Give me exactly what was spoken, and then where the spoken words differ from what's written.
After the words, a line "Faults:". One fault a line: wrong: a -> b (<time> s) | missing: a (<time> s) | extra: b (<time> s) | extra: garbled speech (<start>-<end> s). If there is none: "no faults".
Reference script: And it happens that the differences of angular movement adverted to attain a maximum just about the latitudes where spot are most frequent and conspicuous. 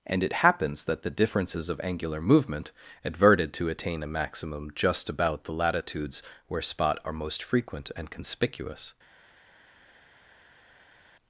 And it happens that the differences of angular movement adverted to attain a maximum just about the latitudes where spot are most frequent and conspicuous.
Faults:
no faults